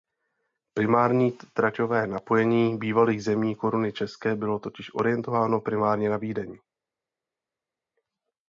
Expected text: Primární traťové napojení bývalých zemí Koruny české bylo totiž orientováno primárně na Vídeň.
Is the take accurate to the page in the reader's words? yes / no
yes